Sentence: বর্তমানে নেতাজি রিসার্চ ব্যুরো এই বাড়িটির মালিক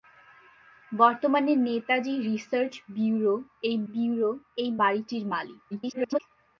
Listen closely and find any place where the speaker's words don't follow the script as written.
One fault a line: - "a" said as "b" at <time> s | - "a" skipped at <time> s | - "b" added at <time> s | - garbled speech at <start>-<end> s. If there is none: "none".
- "ব্যুরো এই" added at 3.9 s
- garbled speech at 5.7-6.2 s